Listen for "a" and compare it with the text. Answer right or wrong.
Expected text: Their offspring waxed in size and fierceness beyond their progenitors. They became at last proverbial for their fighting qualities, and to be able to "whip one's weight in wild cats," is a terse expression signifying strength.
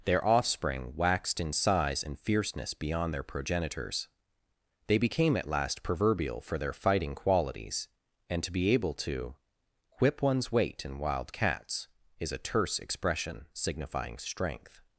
right